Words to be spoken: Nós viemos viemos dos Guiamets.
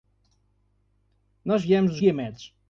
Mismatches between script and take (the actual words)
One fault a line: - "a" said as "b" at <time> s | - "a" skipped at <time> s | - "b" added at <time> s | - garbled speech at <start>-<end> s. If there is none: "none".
- "viemos" skipped at 1.9 s